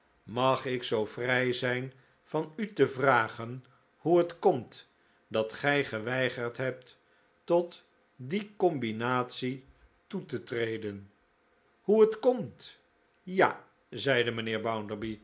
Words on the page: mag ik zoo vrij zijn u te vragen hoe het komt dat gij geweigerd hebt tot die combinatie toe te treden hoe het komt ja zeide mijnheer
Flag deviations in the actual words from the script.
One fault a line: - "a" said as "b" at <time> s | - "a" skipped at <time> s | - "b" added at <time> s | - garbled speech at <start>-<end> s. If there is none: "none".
- "van" added at 2.2 s